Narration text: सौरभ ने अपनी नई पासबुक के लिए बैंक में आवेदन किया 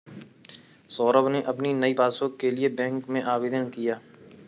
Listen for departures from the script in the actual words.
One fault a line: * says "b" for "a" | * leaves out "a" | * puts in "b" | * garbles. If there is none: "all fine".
all fine